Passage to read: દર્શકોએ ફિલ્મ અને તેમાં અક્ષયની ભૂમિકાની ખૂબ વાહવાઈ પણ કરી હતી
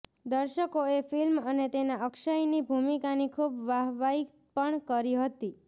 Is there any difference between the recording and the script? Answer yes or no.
no